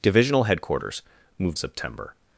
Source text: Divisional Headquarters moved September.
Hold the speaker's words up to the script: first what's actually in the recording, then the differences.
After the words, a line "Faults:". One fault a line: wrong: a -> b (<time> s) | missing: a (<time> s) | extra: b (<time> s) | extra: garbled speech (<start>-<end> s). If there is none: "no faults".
Divisional Headquarters moved September.
Faults:
no faults